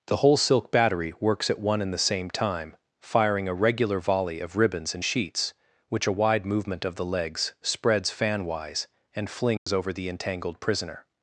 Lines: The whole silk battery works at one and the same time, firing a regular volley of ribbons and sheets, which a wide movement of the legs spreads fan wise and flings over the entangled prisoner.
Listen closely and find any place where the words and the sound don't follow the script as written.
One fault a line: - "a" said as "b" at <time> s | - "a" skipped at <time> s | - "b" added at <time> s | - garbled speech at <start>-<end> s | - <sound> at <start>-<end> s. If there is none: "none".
- dropout at 9.6-9.7 s